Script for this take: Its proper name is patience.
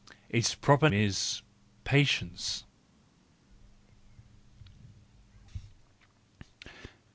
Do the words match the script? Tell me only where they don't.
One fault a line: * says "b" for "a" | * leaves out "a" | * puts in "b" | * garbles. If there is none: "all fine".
* leaves out "name"